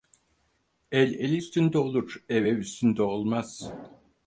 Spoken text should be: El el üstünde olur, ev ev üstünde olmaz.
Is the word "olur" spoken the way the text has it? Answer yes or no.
yes